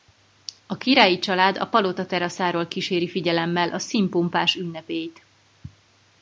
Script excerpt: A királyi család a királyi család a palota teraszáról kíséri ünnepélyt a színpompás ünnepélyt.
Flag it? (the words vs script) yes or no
yes